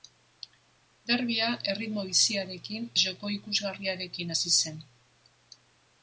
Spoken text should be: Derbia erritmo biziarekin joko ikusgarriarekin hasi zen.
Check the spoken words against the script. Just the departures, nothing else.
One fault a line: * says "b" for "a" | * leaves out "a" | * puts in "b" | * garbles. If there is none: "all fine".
all fine